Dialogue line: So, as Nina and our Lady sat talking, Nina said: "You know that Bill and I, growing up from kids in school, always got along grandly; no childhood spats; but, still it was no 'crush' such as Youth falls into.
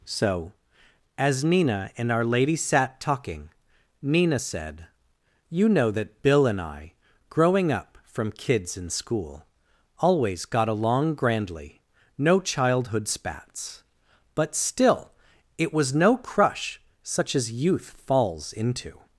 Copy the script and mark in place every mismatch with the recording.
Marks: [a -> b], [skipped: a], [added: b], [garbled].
So, as Nina and our Lady sat talking, Nina said: "You know that Bill and I, growing up from kids in school, always got along grandly; no childhood spats; but, still it was no 'crush' such as Youth falls into.